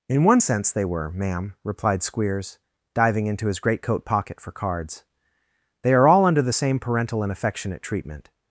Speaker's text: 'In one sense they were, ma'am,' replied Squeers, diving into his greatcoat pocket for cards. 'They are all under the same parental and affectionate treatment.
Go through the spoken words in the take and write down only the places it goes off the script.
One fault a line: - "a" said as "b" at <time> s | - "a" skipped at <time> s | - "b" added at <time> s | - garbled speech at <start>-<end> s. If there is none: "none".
none